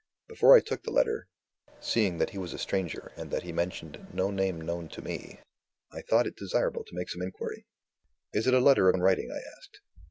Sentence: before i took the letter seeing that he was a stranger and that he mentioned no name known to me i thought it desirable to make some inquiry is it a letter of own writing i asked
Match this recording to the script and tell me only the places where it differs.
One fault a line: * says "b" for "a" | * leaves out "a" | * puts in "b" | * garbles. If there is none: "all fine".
all fine